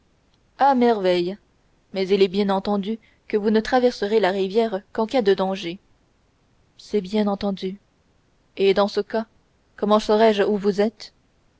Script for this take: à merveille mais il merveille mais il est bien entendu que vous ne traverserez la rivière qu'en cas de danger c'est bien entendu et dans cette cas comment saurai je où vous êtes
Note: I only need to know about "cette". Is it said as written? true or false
false